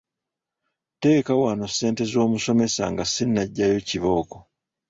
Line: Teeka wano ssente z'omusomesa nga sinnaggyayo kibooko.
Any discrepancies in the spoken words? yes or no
no